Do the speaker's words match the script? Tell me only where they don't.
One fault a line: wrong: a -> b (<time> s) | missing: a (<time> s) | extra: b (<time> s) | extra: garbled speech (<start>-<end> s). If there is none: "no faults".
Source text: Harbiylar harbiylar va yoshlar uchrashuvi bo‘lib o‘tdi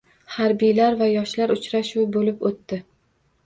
missing: harbiylar (1.0 s)